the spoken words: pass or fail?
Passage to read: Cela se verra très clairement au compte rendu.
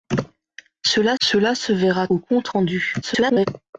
fail